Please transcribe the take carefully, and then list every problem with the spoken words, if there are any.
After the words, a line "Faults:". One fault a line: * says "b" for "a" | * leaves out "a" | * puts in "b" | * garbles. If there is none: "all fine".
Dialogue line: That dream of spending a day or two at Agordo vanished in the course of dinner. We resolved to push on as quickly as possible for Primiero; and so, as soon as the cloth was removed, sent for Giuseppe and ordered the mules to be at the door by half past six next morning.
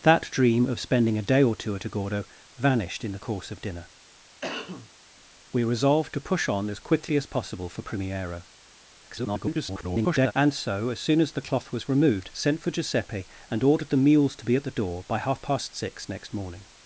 That dream of spending a day or two at Agordo vanished in the course of dinner. We resolved to push on as quickly as possible for Primiero; [garbled] and so, as soon as the cloth was removed, sent for Giuseppe and ordered the mules to be at the door by half past six next morning.
Faults:
* garbles